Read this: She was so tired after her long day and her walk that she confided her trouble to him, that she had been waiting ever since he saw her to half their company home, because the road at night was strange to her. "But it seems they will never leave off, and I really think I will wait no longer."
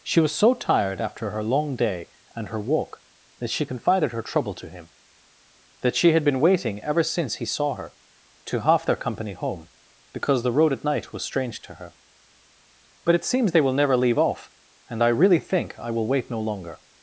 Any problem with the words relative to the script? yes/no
no